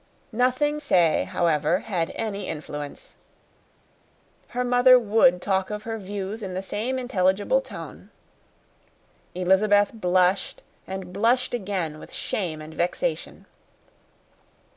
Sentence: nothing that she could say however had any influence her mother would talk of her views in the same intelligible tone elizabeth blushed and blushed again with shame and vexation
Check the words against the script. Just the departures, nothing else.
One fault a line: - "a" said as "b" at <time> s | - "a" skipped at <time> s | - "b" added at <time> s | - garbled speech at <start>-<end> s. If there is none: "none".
- "that she could" skipped at 0.8 s